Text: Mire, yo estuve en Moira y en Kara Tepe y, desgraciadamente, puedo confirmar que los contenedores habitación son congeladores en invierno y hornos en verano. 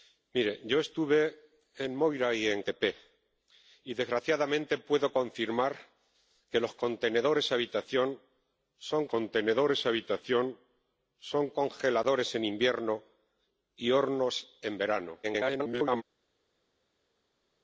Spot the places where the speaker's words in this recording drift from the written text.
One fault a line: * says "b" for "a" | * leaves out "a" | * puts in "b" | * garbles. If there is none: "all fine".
* leaves out "Kara"
* puts in "contenedores habitación son"
* garbles